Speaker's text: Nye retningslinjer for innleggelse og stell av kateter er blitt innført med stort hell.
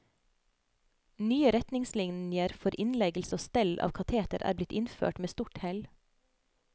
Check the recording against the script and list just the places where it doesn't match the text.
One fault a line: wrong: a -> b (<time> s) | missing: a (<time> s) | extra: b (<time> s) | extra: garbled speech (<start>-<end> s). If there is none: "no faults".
no faults